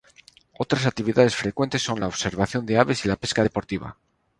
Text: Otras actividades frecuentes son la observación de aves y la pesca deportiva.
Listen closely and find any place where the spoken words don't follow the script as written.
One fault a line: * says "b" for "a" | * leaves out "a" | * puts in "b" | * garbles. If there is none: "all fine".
all fine